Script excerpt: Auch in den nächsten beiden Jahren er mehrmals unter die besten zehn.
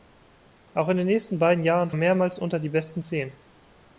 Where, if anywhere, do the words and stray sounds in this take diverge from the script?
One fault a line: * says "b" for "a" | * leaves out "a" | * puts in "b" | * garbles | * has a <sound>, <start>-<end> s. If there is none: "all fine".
all fine